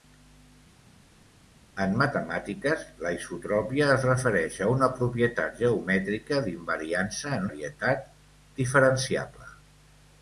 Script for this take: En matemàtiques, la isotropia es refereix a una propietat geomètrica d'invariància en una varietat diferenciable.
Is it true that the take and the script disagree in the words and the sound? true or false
true